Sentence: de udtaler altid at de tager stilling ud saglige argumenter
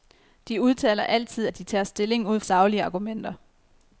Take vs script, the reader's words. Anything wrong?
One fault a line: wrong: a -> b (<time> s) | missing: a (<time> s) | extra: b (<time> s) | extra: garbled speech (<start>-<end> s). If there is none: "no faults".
no faults